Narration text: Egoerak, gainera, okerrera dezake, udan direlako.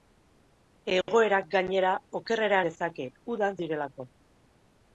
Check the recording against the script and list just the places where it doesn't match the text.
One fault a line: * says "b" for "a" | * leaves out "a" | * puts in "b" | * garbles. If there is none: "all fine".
all fine